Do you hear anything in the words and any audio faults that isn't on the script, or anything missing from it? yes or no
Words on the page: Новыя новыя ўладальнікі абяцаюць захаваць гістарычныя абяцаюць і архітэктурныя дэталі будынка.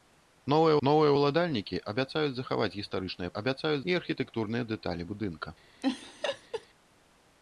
yes